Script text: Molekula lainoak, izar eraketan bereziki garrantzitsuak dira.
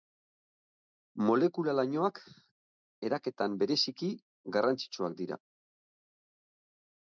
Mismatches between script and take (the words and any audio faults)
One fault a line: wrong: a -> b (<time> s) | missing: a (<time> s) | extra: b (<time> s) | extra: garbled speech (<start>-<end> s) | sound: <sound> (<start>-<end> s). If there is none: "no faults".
missing: izar (2.2 s)